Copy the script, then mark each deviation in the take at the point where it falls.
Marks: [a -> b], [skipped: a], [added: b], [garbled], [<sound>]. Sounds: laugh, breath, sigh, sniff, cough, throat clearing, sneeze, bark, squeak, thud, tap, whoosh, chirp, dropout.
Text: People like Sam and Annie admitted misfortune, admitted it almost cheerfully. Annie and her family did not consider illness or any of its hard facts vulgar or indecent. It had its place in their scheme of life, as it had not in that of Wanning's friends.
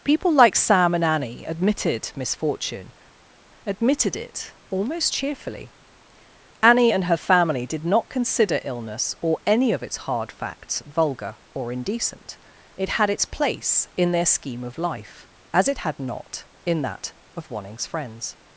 People like Sam and Annie admitted misfortune, admitted it almost cheerfully. Annie and her family did not consider illness or any of its hard facts vulgar or indecent. It had its place in their scheme of life, as it had not in that of Wanning's friends.